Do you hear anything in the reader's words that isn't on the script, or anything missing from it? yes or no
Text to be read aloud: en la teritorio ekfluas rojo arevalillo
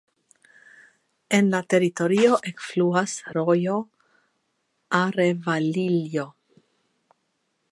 no